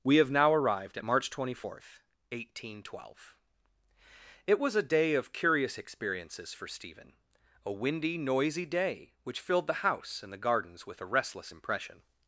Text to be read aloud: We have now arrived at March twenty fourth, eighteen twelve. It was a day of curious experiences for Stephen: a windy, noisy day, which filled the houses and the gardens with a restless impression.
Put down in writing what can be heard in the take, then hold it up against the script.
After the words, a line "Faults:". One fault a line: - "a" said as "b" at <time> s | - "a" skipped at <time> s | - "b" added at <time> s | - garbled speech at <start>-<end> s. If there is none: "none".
We have now arrived at March twenty fourth, eighteen twelve. It was a day of curious experiences for Stephen: a windy, noisy day, which filled the house and the gardens with a restless impression.
Faults:
- "houses" said as "house" at 9.9 s